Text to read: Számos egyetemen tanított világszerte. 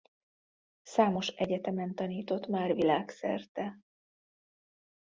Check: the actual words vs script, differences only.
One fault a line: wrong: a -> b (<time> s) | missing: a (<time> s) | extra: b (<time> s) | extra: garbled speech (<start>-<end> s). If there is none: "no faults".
extra: már (2.5 s)